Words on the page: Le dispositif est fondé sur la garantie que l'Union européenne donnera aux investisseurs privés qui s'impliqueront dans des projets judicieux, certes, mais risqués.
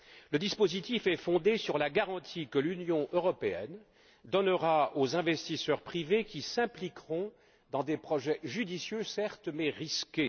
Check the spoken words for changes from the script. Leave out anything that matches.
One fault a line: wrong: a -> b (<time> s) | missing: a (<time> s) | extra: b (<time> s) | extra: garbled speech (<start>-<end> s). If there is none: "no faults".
no faults